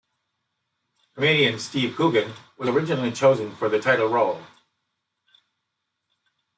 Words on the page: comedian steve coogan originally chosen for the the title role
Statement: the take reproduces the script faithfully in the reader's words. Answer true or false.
false